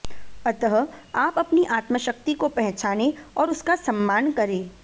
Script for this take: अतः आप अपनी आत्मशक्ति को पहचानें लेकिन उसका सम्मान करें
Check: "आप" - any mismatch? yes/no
no